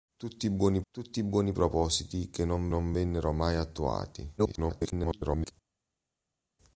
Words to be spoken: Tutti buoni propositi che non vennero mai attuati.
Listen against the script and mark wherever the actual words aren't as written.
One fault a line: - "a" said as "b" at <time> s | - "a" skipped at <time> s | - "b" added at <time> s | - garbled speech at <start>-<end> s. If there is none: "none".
- "tutti buoni" added at 0.9 s
- "non" added at 2.7 s
- garbled speech at 4.4-5.5 s